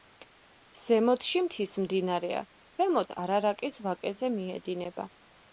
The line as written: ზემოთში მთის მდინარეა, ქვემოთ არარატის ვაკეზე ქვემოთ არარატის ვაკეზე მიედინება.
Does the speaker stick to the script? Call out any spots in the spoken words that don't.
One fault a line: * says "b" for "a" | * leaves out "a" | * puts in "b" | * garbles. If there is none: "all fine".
* leaves out "ქვემოთ არარატის ვაკეზე"